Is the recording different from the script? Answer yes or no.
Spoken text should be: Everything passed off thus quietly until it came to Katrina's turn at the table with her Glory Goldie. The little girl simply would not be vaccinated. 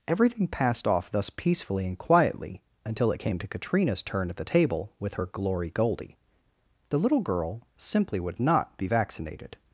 yes